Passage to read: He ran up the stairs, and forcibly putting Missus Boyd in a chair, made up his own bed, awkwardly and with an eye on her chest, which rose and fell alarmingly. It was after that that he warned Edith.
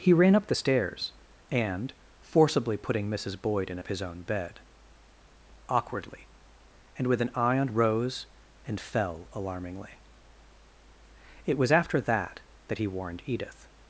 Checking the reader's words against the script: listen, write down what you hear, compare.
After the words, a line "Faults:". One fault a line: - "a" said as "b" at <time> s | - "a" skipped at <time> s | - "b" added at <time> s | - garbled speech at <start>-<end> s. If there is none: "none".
He ran up the stairs, and forcibly putting Missus Boyd in up his own bed, awkwardly and with an eye on rose and fell alarmingly. It was after that that he warned Edith.
Faults:
- "a chair made" skipped at 3.8 s
- "her chest which" skipped at 7.7 s